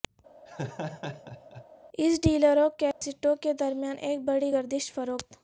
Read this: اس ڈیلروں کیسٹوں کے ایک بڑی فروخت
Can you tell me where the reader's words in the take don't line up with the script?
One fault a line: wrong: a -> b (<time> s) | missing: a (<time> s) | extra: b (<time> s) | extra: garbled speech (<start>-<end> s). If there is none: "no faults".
extra: درمیان (3.5 s)
extra: گردش (4.5 s)